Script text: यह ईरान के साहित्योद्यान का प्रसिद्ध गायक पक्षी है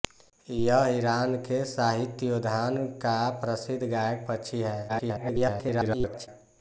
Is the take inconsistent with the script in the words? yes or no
yes